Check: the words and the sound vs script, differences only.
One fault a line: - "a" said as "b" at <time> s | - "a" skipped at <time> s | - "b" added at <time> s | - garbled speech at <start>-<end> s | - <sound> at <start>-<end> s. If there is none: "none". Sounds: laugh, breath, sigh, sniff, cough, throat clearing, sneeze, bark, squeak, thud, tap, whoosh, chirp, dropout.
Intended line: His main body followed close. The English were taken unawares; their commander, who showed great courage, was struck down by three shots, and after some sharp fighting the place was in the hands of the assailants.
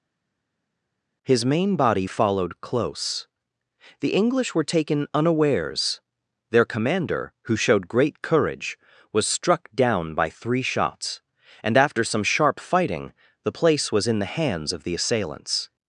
none